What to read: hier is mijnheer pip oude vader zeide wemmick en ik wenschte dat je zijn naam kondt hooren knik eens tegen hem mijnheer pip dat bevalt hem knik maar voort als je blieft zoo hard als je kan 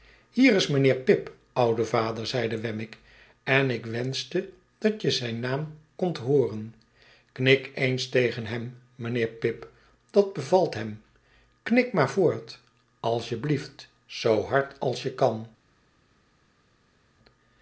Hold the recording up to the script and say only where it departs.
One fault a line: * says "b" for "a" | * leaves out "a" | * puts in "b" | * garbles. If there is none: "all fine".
all fine